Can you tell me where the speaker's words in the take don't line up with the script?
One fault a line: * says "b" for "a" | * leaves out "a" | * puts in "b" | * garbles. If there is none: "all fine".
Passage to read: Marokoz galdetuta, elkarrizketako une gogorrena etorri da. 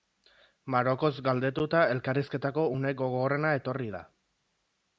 all fine